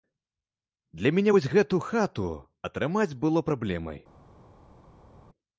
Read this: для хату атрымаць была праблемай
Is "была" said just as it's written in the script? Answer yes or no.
no